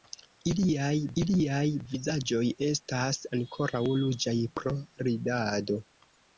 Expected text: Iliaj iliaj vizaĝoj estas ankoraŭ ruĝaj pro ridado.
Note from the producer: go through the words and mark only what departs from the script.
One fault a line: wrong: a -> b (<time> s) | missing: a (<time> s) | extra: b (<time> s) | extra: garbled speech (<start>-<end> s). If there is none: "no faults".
no faults